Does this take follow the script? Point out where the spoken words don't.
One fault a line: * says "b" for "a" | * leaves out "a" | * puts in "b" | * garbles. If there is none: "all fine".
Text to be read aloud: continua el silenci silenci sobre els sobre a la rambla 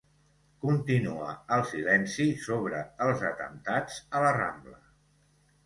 * leaves out "silenci"
* says "atemptats" for "sobre"